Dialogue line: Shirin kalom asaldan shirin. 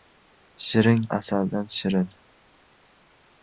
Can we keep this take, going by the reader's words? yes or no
no